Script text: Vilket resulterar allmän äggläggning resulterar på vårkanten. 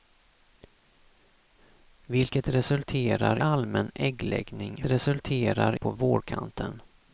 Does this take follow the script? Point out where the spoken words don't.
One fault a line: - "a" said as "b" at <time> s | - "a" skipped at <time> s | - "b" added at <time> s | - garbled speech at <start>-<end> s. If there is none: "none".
none